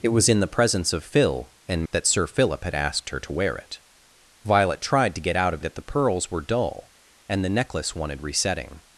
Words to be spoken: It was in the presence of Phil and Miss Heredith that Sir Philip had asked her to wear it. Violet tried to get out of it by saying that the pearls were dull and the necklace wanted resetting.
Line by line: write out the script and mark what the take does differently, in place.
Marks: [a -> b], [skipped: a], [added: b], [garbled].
It was in the presence of Phil and [skipped: Miss Heredith] that Sir Philip had asked her to wear it. Violet tried to get out of [skipped: it by saying] that the pearls were dull and the necklace wanted resetting.